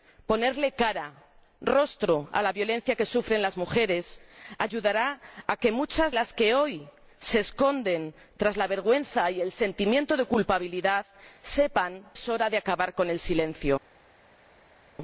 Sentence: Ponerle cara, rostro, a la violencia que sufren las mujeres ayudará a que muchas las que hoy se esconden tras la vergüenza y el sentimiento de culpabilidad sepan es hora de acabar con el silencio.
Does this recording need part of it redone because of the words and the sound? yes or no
no